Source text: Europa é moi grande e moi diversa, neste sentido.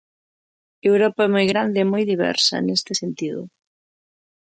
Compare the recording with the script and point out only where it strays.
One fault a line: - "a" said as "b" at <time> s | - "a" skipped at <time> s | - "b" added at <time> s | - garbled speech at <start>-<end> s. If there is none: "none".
none